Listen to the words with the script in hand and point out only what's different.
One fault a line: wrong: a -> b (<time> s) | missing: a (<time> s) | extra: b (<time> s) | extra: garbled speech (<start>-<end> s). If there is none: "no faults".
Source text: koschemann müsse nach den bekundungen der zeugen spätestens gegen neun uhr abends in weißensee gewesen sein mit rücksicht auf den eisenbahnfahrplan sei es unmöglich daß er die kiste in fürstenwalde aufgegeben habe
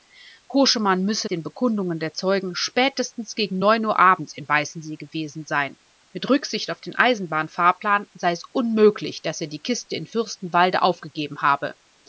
missing: nach (1.3 s)